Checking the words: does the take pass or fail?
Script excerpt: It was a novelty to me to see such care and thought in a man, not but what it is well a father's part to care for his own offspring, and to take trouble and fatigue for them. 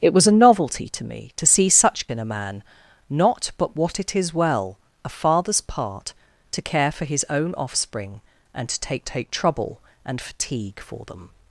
fail